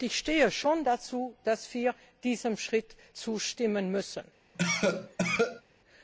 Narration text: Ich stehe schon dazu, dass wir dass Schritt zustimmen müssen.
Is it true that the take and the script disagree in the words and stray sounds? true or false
true